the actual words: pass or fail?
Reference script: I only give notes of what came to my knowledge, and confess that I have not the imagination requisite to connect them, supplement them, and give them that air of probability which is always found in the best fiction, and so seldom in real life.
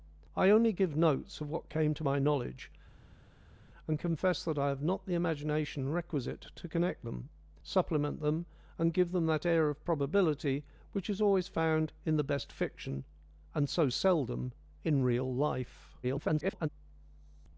fail